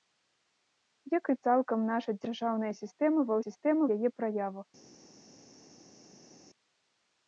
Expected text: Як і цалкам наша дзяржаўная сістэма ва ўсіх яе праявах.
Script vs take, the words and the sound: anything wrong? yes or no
yes